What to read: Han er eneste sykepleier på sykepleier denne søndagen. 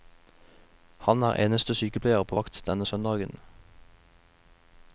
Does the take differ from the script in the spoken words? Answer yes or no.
yes